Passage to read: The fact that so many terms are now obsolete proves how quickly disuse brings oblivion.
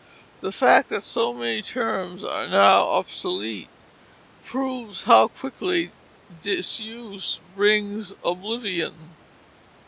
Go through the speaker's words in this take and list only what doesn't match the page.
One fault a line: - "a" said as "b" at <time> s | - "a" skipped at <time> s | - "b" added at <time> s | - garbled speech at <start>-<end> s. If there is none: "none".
none